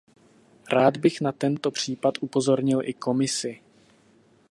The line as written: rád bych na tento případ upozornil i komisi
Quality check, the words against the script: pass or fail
pass